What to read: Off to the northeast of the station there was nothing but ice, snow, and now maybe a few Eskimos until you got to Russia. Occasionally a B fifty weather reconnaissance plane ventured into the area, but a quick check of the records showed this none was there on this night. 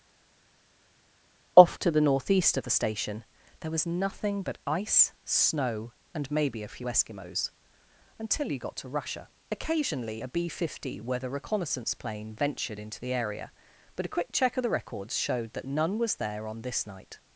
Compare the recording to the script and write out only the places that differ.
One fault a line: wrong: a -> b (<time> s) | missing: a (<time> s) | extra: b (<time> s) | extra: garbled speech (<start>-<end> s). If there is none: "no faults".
missing: now (6.3 s)
wrong: this -> that (15.5 s)